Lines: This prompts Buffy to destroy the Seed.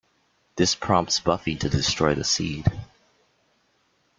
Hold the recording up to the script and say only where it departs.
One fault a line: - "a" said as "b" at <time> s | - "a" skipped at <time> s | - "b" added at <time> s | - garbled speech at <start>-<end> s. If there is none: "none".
none